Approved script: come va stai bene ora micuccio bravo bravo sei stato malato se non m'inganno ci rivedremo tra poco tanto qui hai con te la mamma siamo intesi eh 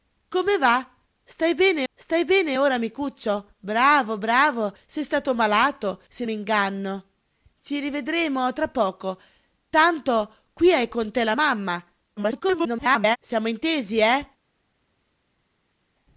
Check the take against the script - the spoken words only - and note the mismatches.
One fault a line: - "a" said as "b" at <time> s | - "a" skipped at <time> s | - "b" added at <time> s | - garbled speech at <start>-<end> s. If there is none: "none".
- "stai bene" added at 1.9 s
- "non" skipped at 6.2 s
- garbled speech at 12.2-13.2 s